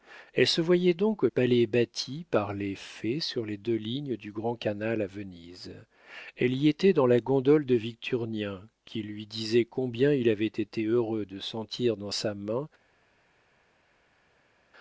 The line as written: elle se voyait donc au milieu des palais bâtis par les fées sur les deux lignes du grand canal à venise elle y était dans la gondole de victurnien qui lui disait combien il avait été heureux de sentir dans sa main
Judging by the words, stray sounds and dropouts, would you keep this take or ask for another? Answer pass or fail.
fail